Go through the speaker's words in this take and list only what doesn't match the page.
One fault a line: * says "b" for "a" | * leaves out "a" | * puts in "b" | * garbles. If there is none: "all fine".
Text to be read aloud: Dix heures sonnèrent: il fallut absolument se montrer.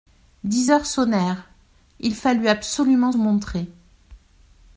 * leaves out "se"